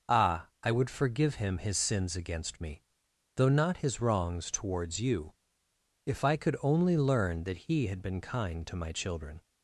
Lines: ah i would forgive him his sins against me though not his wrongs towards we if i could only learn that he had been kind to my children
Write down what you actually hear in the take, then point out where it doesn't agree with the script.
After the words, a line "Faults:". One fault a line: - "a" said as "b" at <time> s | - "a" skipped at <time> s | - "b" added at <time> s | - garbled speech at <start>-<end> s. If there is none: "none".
ah i would forgive him his sins against me though not his wrongs towards you if i could only learn that he had been kind to my children
Faults:
- "we" said as "you" at 5.0 s